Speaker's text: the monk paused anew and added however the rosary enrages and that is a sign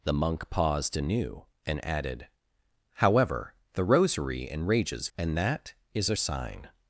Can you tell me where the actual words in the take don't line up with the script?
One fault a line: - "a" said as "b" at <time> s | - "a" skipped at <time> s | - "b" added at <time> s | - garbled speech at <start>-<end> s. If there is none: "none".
none